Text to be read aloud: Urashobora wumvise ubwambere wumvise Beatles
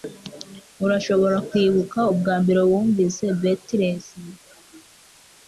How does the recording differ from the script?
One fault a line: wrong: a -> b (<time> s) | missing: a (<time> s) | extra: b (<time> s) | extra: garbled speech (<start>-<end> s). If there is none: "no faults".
wrong: wumvise -> kwibuka (1.5 s)